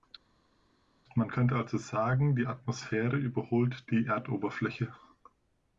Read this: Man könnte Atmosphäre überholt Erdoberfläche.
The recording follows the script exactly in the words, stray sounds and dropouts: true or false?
false